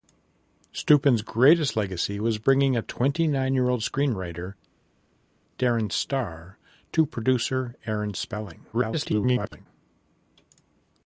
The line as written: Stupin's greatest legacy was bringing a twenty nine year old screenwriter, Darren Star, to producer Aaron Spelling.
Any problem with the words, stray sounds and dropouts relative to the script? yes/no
yes